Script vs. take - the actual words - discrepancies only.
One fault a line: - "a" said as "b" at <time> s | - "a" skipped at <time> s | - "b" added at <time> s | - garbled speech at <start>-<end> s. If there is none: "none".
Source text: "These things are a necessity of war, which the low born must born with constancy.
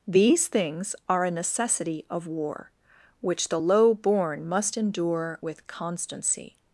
- "born" said as "endure" at 4.8 s